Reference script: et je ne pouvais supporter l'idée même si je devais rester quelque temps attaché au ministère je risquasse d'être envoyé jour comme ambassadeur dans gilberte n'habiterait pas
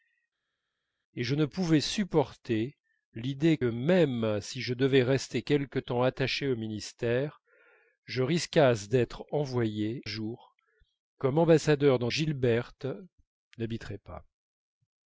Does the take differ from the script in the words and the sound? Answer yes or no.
no